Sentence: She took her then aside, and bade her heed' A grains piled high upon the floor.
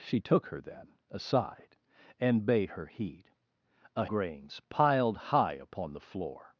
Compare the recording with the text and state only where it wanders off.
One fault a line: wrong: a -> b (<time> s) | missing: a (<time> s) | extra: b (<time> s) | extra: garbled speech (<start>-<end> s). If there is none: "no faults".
no faults